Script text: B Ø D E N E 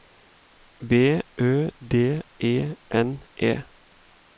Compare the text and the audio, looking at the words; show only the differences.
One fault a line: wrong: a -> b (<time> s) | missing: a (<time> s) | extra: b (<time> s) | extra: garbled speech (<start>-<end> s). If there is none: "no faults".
no faults